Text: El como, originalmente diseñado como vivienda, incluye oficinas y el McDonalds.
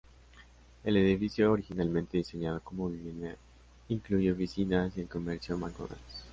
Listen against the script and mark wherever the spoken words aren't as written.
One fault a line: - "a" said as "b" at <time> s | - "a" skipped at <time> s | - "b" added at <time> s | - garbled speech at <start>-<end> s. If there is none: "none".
- "como" said as "edificio" at 1.0 s
- "comercio" added at 5.1 s